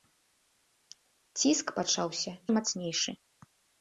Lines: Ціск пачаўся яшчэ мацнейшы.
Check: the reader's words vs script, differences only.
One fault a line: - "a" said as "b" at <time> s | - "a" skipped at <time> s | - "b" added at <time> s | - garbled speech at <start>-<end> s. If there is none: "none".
- "яшчэ" skipped at 2.3 s